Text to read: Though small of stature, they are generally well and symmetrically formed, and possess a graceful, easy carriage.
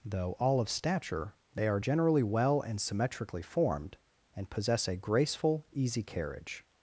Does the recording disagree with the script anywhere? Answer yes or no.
yes